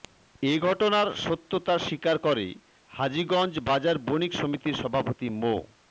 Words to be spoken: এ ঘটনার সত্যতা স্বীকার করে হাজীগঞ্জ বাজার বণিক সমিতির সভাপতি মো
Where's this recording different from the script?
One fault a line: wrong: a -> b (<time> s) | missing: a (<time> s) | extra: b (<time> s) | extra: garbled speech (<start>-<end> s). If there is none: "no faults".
no faults